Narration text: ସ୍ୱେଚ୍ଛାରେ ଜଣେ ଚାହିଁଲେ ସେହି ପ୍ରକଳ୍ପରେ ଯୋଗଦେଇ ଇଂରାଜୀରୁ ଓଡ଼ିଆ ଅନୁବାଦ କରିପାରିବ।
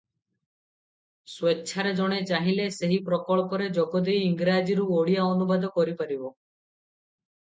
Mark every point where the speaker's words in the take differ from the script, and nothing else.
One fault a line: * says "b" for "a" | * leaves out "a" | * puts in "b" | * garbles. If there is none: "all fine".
all fine